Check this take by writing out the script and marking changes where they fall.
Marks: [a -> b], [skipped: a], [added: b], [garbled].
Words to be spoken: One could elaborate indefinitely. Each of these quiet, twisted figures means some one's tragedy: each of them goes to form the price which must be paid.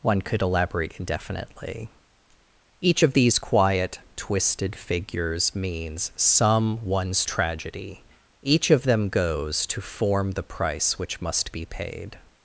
One could elaborate indefinitely. Each of these quiet, twisted figures means some one's tragedy: each of them goes to form the price which must be paid.